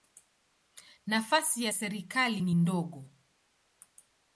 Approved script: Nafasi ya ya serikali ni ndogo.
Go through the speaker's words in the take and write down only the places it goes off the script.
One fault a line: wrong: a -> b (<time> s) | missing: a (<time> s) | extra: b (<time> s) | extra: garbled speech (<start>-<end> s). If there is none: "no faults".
missing: ya (1.7 s)